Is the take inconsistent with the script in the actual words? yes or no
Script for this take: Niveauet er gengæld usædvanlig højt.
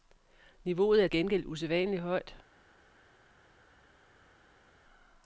no